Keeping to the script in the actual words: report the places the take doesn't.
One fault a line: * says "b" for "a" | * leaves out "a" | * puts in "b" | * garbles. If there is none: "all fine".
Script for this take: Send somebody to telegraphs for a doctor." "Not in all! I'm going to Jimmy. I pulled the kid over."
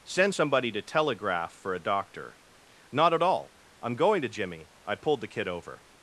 * says "telegraph" for "telegraphs"
* says "at" for "in"